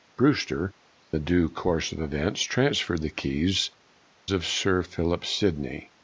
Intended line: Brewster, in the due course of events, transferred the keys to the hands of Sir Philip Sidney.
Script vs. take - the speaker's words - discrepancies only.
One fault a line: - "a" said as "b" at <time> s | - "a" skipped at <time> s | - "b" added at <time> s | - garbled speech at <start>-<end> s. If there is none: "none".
- "in" skipped at 0.7 s
- "to the hands" skipped at 3.7 s